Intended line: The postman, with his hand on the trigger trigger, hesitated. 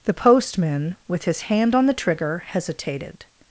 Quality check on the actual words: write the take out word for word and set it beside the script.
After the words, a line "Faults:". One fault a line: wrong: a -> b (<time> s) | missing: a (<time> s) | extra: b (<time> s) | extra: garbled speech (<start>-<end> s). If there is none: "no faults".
The postman, with his hand on the trigger, hesitated.
Faults:
missing: trigger (2.4 s)